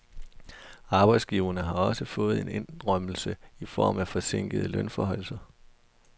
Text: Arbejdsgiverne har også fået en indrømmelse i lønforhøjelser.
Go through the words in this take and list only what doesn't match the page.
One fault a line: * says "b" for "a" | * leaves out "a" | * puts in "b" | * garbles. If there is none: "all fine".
* puts in "form af forsinkede"